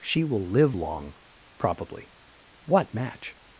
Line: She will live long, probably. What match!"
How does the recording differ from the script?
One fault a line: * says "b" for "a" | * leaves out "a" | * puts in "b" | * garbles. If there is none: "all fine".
all fine